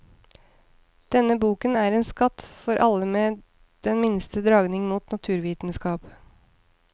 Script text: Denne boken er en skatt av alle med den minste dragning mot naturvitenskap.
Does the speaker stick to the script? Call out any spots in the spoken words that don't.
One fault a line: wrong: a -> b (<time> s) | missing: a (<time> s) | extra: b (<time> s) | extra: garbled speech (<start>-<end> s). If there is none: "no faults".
wrong: av -> for (2.6 s)